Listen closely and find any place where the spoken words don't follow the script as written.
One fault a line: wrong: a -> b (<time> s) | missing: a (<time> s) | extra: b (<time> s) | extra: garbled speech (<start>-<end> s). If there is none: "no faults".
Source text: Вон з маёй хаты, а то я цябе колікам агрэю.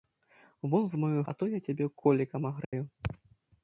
missing: хаты (1.2 s)